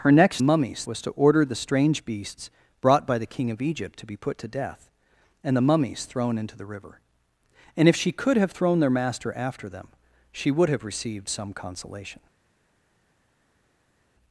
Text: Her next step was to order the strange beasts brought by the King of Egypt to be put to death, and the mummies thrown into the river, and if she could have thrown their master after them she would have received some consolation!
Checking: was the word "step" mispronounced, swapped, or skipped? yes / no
yes